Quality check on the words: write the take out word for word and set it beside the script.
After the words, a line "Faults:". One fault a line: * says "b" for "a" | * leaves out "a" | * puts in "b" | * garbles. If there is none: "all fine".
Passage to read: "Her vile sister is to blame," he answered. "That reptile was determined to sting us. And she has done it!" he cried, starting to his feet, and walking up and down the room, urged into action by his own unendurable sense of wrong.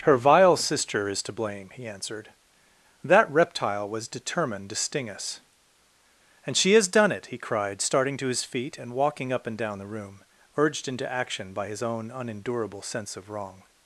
"Her vile sister is to blame," he answered. "That reptile was determined to sting us. And she has done it!" he cried, starting to his feet, and walking up and down the room, urged into action by his own unendurable sense of wrong.
Faults:
all fine